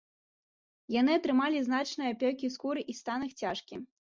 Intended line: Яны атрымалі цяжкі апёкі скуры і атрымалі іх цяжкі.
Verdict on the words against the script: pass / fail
fail